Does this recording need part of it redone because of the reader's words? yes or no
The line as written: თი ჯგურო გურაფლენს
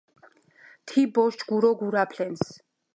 yes